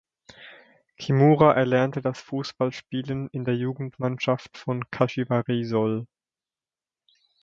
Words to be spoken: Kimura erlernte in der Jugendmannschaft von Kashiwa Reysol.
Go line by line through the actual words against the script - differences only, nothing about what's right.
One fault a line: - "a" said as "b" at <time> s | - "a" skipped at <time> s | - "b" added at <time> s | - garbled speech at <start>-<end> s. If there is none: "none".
- "das Fußballspielen" added at 2.0 s